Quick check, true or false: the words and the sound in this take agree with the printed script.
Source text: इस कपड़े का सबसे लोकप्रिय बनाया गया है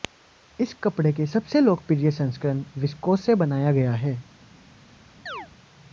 false